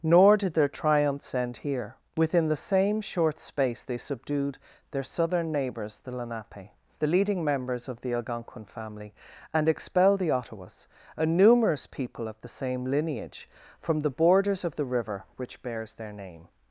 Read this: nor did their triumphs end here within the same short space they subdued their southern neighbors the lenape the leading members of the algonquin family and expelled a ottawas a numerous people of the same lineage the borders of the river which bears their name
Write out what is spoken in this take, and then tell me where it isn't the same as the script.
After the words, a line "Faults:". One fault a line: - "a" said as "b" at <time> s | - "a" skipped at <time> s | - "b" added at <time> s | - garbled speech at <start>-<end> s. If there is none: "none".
nor did their triumphs end here within the same short space they subdued their southern neighbors the lenape the leading members of the algonquin family and expelled the ottawas a numerous people of the same lineage from the borders of the river which bears their name
Faults:
- "a" said as "the" at 10.2 s
- "from" added at 13.8 s